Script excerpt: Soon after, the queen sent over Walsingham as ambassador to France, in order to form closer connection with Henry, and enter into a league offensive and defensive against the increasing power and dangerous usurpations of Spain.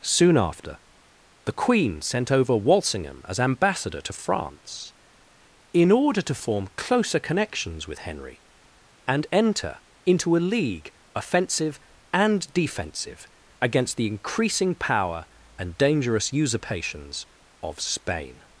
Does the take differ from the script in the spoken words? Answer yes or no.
yes